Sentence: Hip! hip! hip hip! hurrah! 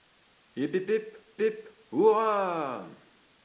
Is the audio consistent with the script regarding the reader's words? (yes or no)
yes